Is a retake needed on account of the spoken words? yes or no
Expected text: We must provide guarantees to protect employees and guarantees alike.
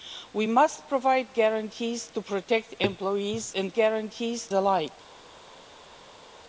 no